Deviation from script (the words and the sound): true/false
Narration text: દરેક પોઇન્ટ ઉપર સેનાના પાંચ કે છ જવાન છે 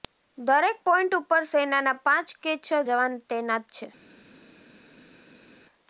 true